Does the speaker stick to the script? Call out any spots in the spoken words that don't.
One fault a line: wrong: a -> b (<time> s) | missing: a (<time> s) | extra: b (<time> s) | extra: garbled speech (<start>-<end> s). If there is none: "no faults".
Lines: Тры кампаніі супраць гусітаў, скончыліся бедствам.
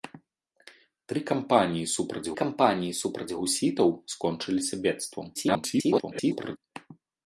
extra: кампаніі супраць (2.4 s)
extra: garbled speech (5.3-6.6 s)